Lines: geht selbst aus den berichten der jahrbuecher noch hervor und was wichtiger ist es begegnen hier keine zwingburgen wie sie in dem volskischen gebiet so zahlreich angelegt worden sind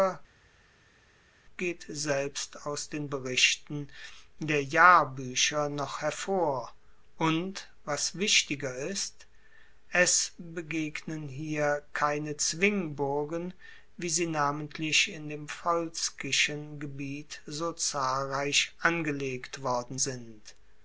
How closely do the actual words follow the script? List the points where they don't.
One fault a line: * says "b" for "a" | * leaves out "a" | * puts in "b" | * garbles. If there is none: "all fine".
* puts in "namentlich"